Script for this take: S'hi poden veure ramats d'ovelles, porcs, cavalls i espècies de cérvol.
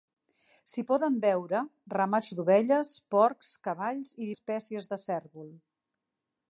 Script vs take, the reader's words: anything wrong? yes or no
no